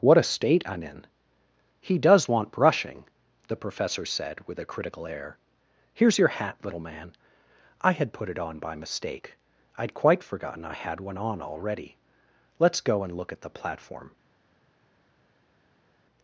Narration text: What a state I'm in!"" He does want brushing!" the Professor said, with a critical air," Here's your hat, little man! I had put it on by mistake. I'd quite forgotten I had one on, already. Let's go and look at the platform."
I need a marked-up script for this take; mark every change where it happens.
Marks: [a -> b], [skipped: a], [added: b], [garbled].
What a state I'm in!"" He does want brushing!" the Professor said, with a critical air," Here's your hat, little man! I had put it on by mistake. I'd quite forgotten I had one on, already. Let's go and look at the platform."